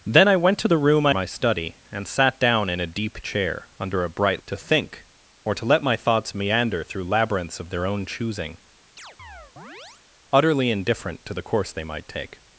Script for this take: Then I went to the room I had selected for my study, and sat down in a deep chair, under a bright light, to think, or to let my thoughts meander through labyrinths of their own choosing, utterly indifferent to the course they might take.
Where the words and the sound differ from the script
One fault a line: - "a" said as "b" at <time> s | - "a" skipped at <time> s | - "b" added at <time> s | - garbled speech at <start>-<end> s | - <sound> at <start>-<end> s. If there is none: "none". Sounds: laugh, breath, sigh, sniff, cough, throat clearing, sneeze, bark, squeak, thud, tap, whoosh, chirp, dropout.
- "had selected for" skipped at 1.1 s
- "light" skipped at 4.4 s
- chirp at 9.0-10.0 s